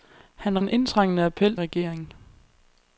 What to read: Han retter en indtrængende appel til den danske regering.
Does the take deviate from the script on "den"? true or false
true